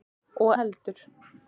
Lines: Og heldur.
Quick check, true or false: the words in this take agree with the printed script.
true